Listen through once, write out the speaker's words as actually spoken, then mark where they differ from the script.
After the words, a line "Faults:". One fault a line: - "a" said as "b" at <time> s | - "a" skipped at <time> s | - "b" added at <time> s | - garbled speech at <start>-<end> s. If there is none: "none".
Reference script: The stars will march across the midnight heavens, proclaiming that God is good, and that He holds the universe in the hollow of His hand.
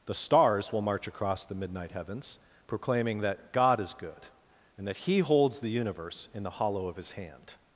The stars will march across the midnight heavens, proclaiming that God is good, and that He holds the universe in the hollow of His hand.
Faults:
none